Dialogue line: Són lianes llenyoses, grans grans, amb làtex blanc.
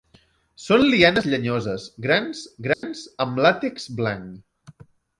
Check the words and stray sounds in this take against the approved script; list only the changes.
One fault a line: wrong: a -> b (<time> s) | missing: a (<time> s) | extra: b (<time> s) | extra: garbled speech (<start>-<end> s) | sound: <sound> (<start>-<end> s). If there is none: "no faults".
sound: dropout (2.7-2.8 s)